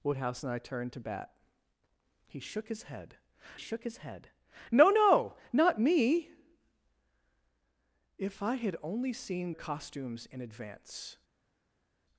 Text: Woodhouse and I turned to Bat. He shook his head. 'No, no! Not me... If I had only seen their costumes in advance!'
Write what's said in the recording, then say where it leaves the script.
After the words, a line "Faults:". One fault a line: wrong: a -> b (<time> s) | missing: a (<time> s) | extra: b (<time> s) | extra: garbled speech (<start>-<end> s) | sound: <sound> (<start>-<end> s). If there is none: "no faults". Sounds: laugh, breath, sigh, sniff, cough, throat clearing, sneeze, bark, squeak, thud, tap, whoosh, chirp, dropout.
Woodhouse and I turned to Bat. He shook his head shook his head. 'No, no! Not me... If I had only seen costumes in advance!'
Faults:
extra: shook his head (3.6 s)
missing: their (9.5 s)